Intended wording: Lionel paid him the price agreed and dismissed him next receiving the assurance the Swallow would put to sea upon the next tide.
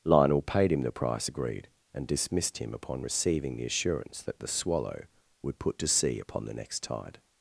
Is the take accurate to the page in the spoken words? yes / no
no